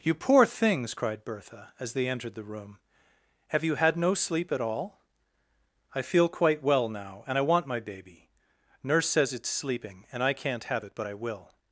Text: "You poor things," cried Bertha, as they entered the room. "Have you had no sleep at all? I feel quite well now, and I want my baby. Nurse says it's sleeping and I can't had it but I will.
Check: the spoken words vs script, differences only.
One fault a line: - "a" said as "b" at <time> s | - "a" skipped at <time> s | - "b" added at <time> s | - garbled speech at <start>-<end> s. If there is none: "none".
- "had" said as "have" at 10.6 s